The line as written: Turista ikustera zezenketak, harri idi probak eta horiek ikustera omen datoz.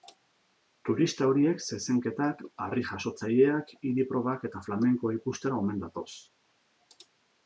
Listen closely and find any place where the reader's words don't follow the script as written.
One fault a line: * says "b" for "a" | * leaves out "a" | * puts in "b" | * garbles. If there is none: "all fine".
* says "horiek" for "ikustera"
* puts in "jasotzaileak"
* says "flamenkoa" for "horiek"